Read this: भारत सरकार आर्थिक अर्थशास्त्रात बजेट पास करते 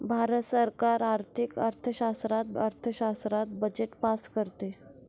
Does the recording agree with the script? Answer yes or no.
no